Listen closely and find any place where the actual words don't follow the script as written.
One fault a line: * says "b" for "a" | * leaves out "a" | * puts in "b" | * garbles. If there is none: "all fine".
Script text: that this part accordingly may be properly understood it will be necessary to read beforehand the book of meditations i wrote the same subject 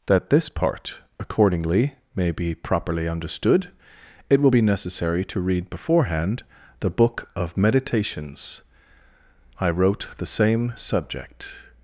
all fine